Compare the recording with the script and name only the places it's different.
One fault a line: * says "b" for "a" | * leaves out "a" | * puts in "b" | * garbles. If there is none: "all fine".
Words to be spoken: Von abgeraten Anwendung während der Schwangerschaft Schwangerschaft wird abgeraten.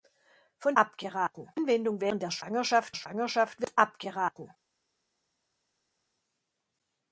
all fine